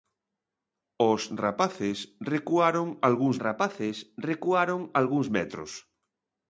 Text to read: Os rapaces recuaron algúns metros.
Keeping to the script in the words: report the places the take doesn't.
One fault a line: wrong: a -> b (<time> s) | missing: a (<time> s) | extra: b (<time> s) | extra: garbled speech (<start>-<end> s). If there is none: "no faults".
extra: rapaces recuaron algúns (3.4 s)